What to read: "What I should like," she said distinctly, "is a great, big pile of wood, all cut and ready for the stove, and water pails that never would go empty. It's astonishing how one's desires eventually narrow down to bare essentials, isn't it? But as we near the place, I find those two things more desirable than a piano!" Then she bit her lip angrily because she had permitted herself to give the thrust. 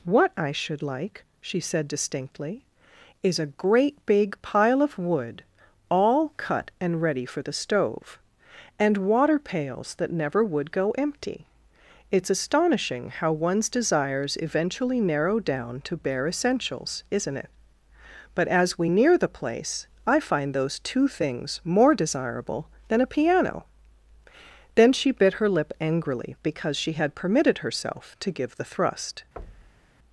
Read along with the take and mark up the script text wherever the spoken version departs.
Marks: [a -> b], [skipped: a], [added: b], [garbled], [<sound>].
"What I should like," she said distinctly, "is a great, big pile of wood, all cut and ready for the stove, and water pails that never would go empty. It's astonishing how one's desires eventually narrow down to bare essentials, isn't it? But as we near the place, I find those two things more desirable than a piano!" Then she bit her lip angrily because she had permitted herself to give the thrust. [thud]